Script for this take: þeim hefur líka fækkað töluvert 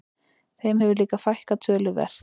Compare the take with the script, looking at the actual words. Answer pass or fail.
pass